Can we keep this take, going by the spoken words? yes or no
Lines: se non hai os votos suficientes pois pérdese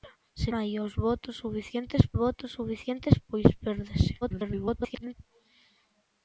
no